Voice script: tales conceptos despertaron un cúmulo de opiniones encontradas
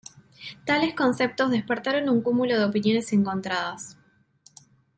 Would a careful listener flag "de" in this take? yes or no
no